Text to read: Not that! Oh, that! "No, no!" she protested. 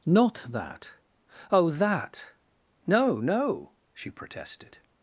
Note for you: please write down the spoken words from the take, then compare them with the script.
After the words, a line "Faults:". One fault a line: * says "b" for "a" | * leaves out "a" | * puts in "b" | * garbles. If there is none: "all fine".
Not that! Oh, that! "No, no!" she protested.
Faults:
all fine